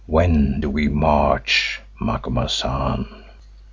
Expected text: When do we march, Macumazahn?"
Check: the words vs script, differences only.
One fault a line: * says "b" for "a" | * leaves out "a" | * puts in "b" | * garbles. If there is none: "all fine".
all fine